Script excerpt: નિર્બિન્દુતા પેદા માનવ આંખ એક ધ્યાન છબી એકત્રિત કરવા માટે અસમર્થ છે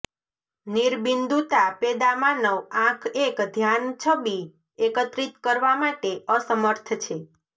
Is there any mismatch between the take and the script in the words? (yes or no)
no